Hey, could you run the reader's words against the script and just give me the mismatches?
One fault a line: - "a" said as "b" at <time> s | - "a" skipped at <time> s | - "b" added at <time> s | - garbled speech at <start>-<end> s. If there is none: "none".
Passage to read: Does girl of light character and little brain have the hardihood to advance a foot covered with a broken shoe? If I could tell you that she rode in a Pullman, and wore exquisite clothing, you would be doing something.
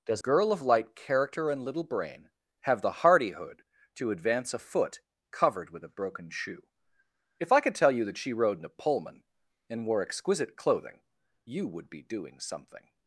none